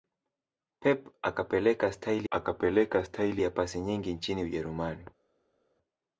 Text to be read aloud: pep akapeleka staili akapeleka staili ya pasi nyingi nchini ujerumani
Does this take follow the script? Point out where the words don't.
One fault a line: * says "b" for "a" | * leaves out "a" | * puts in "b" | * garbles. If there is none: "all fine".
all fine